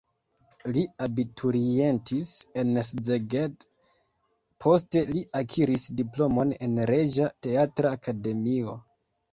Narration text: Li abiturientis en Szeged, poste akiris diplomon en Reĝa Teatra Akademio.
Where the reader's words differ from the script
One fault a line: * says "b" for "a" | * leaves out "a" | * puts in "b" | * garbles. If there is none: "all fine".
* puts in "li"